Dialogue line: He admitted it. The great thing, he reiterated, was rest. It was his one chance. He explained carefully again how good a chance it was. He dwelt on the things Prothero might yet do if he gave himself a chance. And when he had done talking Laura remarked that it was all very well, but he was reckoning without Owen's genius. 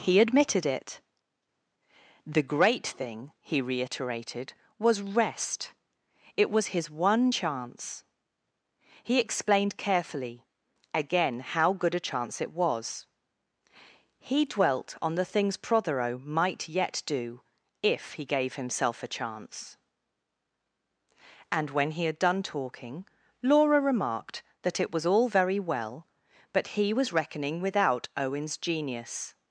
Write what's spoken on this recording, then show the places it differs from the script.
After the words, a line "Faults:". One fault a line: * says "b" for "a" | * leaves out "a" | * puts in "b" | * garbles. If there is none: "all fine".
He admitted it. The great thing, he reiterated, was rest. It was his one chance. He explained carefully again how good a chance it was. He dwelt on the things Prothero might yet do if he gave himself a chance. And when he had done talking Laura remarked that it was all very well, but he was reckoning without Owen's genius.
Faults:
all fine